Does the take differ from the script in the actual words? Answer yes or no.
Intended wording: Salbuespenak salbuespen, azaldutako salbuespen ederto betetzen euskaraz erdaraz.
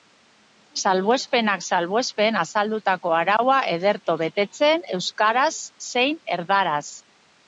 yes